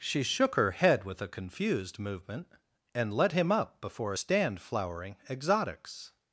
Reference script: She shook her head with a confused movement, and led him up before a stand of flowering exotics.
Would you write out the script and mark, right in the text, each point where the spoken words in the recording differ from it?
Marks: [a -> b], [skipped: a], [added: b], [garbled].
She shook her head with a confused movement, and led him up before a stand [skipped: of] flowering exotics.